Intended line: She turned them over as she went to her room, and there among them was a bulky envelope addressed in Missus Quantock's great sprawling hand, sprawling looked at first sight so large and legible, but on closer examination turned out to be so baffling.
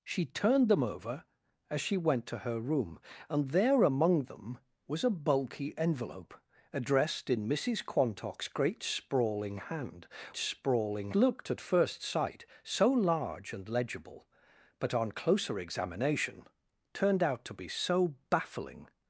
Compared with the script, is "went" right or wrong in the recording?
right